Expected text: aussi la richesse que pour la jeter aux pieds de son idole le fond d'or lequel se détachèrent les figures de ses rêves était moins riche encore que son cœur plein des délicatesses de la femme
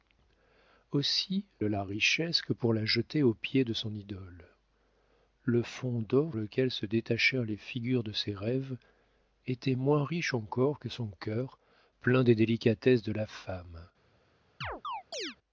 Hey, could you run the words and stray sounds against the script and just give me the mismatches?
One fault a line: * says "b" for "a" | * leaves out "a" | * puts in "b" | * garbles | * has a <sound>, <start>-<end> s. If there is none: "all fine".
* has a chirp, 14.6-15.4 s